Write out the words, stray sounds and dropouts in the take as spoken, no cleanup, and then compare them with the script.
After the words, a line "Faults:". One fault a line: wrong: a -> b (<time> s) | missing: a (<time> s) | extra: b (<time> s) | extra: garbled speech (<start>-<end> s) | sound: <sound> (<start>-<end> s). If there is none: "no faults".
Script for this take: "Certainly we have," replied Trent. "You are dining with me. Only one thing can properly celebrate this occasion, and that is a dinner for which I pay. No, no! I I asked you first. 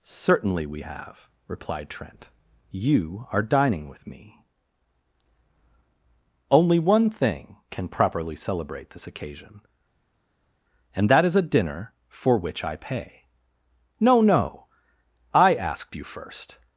"Certainly we have," replied Trent. "You are dining with me. Only one thing can properly celebrate this occasion, and that is a dinner for which I pay. No, no! I asked you first.
Faults:
missing: I (15.6 s)